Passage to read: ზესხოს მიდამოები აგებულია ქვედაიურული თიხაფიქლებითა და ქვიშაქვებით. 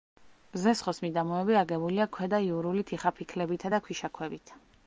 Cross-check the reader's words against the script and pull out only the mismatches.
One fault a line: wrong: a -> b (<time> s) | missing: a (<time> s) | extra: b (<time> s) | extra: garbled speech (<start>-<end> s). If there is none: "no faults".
no faults